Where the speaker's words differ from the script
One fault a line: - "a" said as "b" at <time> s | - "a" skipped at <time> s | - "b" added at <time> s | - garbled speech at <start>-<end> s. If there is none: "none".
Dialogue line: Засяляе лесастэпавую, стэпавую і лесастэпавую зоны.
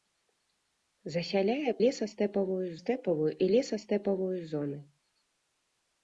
none